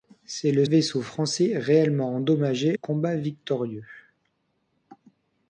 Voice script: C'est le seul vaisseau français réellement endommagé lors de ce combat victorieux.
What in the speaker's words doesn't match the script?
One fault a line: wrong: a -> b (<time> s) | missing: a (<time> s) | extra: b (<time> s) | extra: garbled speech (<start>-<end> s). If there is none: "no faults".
missing: seul (0.7 s)
missing: lors de ce (2.8 s)